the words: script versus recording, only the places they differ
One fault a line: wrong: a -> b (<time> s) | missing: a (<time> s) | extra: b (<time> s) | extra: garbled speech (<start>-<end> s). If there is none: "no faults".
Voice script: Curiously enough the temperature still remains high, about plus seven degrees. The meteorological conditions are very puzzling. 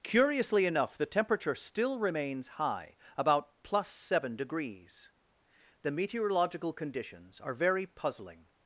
no faults